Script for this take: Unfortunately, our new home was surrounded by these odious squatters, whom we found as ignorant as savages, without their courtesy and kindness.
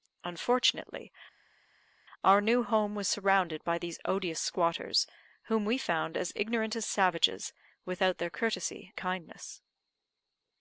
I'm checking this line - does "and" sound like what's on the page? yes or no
no